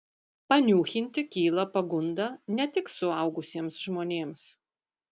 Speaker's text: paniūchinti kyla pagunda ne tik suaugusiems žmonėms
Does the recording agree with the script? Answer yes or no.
yes